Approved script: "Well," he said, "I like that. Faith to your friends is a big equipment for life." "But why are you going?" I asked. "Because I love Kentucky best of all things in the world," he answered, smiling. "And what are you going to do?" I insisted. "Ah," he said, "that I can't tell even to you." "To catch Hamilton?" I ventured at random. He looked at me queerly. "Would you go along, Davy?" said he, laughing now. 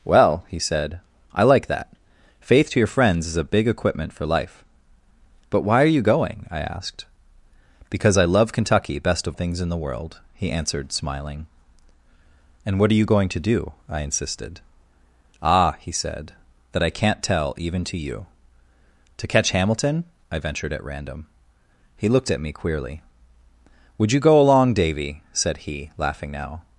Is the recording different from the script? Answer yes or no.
yes